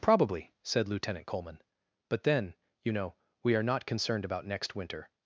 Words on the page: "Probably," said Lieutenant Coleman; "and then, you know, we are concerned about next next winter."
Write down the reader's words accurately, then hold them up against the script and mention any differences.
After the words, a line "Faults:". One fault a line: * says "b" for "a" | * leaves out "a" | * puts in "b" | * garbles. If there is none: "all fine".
"Probably," said Lieutenant Coleman; "but then, you know, we are not concerned about next winter."
Faults:
* says "but" for "and"
* puts in "not"
* leaves out "next"